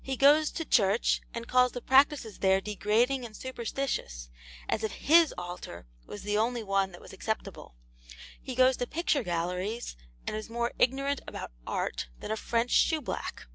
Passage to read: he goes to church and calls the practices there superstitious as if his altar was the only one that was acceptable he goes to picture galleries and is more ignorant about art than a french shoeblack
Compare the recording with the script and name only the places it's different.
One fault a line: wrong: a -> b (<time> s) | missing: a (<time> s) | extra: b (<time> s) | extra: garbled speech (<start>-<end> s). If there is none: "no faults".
extra: degrading and (2.6 s)